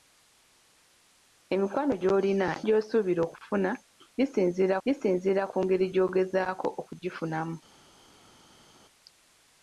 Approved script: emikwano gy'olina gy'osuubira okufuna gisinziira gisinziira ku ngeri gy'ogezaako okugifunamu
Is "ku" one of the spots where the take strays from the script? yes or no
no